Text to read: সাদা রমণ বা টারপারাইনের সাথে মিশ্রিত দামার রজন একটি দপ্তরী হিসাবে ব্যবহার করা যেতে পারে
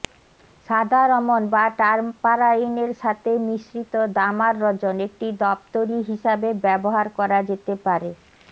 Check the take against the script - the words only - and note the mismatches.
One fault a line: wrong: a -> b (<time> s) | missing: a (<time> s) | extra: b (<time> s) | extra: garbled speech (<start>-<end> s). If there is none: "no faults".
no faults